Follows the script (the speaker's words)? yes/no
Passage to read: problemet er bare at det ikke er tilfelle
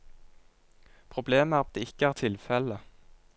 no